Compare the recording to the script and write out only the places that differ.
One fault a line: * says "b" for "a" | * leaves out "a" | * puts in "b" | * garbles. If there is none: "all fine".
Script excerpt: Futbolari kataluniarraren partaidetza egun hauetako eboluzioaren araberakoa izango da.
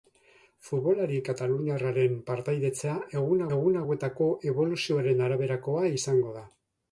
* puts in "egun"